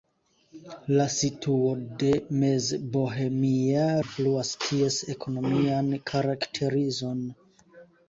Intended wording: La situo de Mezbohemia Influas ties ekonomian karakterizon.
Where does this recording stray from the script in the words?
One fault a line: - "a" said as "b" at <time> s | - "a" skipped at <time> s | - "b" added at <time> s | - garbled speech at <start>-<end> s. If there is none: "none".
none